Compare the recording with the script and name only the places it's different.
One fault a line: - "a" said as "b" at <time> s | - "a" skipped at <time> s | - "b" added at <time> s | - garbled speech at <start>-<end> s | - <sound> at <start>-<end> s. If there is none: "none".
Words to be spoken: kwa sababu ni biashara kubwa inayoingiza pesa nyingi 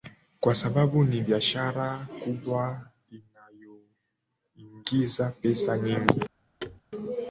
- thud at 6.6-6.8 s